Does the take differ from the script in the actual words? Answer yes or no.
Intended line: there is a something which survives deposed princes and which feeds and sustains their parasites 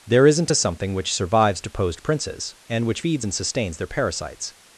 yes